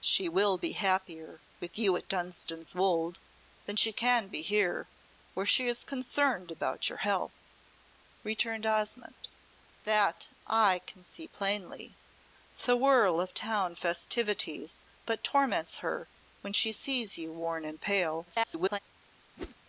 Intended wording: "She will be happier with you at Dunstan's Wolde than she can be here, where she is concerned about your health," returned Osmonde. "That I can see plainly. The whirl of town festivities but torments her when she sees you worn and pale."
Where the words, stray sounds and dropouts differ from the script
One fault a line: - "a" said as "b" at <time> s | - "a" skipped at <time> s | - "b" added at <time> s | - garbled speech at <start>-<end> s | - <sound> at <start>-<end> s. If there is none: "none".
- garbled speech at 18.3-18.8 s
- whoosh at 19.4-19.6 s